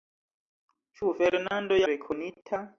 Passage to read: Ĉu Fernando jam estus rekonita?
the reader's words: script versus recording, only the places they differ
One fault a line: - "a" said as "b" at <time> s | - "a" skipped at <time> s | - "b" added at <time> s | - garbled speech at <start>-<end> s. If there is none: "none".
- "jam estus" skipped at 1.8 s